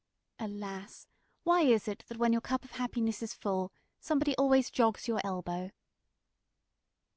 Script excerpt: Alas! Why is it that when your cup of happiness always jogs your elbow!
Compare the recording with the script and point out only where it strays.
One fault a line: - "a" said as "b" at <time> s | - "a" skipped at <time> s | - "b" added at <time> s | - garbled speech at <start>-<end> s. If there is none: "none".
- "is full somebody" added at 3.2 s